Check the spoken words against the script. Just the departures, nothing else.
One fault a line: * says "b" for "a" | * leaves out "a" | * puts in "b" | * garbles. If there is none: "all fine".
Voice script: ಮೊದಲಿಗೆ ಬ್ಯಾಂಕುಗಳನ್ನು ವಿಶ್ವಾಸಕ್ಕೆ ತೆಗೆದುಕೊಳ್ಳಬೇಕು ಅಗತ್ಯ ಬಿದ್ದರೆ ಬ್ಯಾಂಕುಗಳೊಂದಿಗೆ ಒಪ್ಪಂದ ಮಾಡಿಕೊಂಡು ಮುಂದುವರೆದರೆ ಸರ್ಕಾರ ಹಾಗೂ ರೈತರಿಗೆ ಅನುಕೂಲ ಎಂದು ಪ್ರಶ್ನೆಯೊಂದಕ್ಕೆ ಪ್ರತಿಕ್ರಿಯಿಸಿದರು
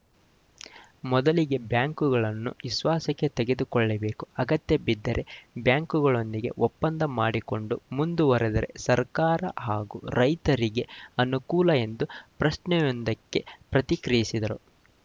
all fine